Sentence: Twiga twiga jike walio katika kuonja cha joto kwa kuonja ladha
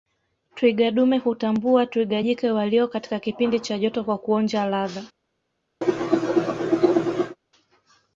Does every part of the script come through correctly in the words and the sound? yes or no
no